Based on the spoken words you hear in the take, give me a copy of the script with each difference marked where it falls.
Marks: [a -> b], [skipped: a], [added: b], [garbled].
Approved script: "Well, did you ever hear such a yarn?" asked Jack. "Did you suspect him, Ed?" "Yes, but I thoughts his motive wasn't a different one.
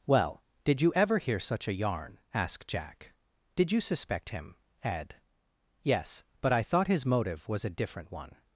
"Well, did you ever hear such a yarn?" asked Jack. "Did you suspect him, Ed?" "Yes, but I [thoughts -> thought] his motive [wasn't -> was] a different one.